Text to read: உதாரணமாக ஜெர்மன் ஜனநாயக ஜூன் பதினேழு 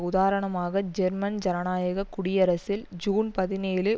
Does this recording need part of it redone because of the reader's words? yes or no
yes